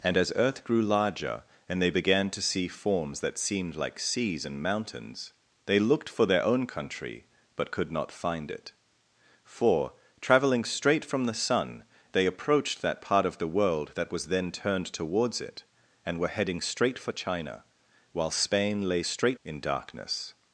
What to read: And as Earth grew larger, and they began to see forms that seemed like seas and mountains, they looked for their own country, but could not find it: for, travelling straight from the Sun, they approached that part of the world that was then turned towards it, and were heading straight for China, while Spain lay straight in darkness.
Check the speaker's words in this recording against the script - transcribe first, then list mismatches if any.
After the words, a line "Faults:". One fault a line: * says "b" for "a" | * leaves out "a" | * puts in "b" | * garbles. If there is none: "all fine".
And as Earth grew larger, and they began to see forms that seemed like seas and mountains, they looked for their own country, but could not find it: for, travelling straight from the Sun, they approached that part of the world that was then turned towards it, and were heading straight for China, while Spain lay straight in darkness.
Faults:
all fine